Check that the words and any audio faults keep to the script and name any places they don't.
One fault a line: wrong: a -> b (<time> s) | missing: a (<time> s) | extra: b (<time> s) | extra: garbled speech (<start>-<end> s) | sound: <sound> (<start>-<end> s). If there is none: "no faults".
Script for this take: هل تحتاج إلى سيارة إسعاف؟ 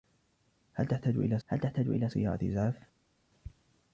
extra: هل تحتاج إلى (1.5 s)